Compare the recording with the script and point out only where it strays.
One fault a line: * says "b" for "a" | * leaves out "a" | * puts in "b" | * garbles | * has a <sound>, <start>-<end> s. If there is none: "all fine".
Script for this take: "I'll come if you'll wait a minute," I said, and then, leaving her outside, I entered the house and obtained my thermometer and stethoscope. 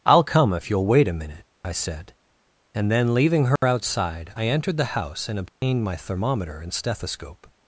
* has a dropout, 3.6-3.6 s
* has a dropout, 5.5-5.6 s